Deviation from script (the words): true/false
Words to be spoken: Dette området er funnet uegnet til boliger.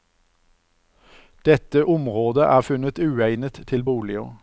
false